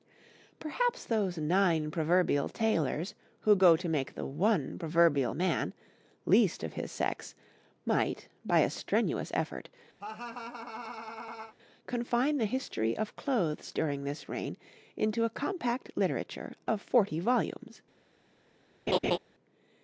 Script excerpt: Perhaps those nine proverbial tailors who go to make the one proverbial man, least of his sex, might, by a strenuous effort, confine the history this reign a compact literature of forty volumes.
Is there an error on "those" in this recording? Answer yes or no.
no